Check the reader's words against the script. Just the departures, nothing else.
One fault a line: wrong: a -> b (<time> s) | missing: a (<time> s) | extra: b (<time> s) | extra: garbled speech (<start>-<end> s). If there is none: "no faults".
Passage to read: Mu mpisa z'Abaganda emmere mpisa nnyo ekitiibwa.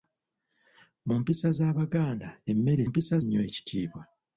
no faults